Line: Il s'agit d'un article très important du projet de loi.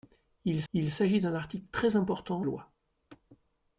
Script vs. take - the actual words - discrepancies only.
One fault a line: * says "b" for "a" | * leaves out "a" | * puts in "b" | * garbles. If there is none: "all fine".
* puts in "il"
* leaves out "du projet de"